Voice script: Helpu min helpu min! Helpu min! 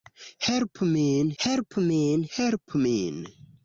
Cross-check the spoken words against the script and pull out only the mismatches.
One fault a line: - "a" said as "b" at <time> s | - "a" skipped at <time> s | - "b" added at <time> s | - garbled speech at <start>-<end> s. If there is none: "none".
none